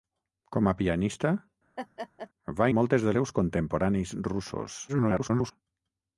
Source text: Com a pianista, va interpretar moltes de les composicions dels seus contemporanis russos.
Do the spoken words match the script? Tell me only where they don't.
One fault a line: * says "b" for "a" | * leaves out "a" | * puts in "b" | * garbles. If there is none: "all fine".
* leaves out "interpretar"
* leaves out "les composicions dels"
* garbles